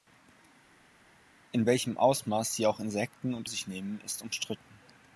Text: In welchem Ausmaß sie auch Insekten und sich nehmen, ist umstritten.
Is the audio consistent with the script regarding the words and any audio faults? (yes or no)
yes